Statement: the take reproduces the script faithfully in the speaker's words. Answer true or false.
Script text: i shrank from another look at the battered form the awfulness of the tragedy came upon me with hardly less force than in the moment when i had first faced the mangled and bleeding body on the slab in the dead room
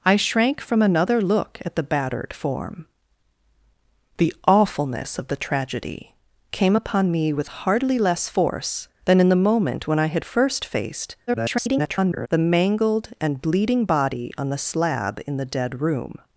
false